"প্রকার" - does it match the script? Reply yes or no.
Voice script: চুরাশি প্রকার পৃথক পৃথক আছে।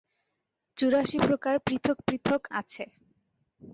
yes